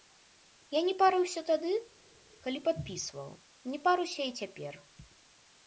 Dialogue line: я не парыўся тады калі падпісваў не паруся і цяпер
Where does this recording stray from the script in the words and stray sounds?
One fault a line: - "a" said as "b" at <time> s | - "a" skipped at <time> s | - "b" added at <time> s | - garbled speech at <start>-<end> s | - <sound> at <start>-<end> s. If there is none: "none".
none